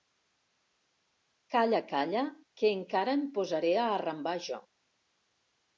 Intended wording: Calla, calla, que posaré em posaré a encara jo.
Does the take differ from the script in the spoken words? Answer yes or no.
yes